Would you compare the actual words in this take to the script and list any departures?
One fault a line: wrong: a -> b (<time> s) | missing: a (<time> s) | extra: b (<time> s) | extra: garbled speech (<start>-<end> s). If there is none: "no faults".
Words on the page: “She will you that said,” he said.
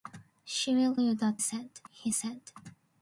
no faults